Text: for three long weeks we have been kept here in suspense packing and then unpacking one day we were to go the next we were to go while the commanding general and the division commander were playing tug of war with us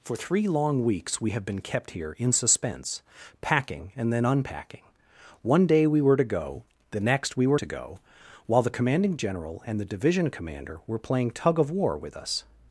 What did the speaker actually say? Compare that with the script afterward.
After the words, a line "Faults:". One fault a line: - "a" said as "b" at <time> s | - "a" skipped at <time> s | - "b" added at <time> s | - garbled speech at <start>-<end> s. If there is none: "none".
for three long weeks we have been kept here in suspense packing and then unpacking one day we were to go the next we were to go while the commanding general and the division commander were playing tug of war with us
Faults:
none